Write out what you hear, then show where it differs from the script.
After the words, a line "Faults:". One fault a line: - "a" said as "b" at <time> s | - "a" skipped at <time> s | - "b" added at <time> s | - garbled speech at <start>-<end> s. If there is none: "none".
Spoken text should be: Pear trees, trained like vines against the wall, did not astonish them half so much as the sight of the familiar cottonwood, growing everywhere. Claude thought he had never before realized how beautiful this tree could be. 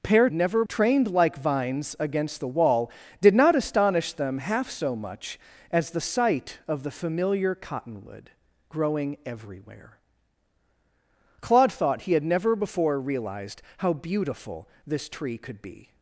Pear never, trained like vines against the wall, did not astonish them half so much as the sight of the familiar cottonwood, growing everywhere. Claude thought he had never before realized how beautiful this tree could be.
Faults:
- "trees" said as "never" at 0.3 s